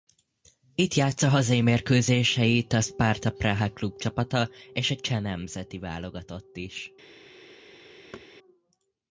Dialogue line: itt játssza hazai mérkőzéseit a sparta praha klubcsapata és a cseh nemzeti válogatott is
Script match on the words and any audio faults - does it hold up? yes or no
no